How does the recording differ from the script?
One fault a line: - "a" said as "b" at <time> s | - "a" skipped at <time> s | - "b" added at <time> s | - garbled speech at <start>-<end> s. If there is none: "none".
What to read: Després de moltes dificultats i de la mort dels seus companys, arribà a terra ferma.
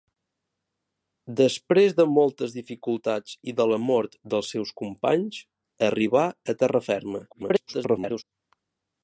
- garbled speech at 7.3-8.2 s